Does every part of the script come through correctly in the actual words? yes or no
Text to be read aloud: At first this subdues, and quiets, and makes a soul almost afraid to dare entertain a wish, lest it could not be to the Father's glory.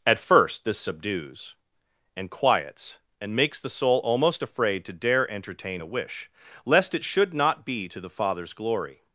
no